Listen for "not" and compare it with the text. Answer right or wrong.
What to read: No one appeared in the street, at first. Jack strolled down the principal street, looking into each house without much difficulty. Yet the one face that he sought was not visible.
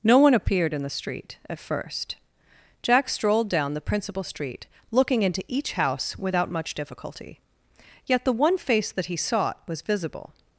wrong